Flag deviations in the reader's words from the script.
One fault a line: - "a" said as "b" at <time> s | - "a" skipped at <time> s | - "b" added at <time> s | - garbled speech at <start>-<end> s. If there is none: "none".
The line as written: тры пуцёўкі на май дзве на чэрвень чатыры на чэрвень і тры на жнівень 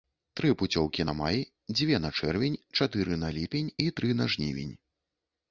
- "чэрвень" said as "ліпень" at 3.4 s